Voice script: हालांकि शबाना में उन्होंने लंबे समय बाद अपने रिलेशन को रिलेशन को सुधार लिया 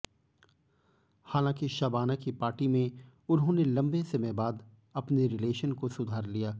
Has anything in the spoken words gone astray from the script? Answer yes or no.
yes